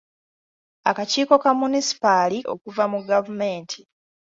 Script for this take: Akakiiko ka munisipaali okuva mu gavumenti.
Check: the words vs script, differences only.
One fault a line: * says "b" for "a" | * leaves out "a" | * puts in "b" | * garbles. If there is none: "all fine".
all fine